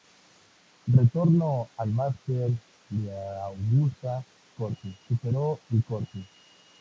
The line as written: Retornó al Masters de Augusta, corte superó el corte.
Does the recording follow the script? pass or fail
pass